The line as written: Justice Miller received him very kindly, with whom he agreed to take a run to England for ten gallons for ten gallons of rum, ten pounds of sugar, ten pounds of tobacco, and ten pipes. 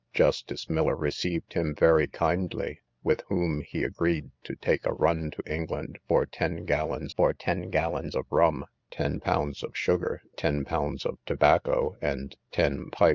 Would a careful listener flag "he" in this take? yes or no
no